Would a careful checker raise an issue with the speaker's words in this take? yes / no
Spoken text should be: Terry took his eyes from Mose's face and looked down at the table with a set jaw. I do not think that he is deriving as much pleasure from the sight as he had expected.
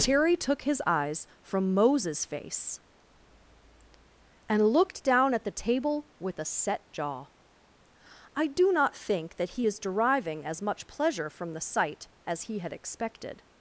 no